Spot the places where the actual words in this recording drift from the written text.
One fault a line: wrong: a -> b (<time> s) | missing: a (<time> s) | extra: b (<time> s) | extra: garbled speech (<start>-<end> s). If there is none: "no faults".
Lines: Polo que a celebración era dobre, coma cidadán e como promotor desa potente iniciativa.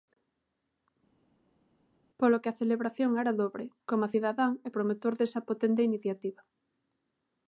missing: como (4.7 s)